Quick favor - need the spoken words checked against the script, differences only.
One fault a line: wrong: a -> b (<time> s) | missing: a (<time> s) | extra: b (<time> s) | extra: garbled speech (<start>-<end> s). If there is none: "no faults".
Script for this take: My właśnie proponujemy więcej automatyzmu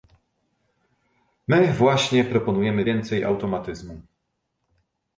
no faults